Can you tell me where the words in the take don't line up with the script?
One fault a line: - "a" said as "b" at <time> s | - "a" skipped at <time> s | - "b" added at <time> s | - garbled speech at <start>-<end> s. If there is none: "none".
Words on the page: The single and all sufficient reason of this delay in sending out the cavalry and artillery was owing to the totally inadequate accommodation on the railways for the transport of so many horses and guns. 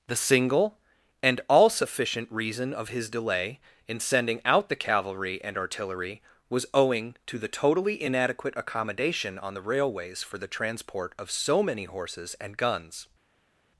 - "this" said as "his" at 2.9 s